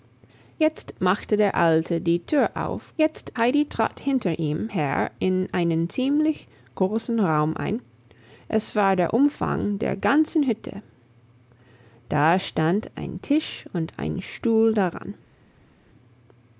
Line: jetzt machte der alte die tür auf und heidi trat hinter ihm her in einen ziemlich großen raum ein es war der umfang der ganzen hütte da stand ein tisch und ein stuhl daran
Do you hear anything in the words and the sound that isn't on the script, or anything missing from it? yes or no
yes